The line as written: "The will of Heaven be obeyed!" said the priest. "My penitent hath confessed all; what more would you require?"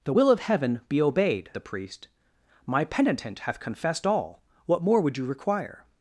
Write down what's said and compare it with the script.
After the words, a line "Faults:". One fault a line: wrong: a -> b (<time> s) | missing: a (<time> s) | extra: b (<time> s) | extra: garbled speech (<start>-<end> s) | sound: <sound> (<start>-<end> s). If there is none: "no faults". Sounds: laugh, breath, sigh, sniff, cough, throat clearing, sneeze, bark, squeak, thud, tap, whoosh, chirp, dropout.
"The will of Heaven be obeyed!" the priest. "My penitent hath confessed all; what more would you require?"
Faults:
missing: said (1.5 s)